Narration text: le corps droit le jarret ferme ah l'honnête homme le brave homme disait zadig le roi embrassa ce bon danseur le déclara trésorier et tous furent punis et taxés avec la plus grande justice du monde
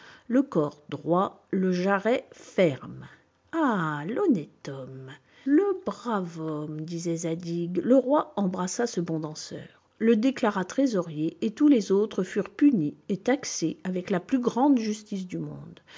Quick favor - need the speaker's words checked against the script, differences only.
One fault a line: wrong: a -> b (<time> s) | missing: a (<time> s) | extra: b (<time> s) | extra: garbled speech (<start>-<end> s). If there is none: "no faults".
extra: les autres (11.7 s)